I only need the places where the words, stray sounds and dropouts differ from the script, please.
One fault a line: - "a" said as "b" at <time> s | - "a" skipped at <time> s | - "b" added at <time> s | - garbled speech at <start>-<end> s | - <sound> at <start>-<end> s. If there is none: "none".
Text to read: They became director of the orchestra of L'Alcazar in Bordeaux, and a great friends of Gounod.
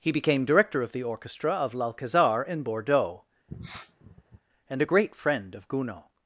- "They" said as "He" at 0.0 s
- sniff at 3.5-4.4 s
- "friends" said as "friend" at 5.1 s